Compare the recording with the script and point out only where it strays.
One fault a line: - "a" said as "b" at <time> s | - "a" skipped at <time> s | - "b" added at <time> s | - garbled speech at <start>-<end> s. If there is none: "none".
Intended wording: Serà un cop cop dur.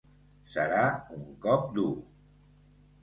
- "cop" skipped at 1.7 s